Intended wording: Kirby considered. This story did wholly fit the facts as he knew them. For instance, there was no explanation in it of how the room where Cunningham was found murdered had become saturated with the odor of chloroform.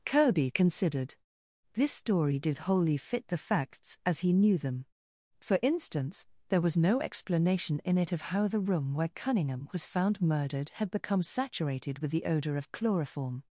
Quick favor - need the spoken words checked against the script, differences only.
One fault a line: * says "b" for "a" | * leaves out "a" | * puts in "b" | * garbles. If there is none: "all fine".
all fine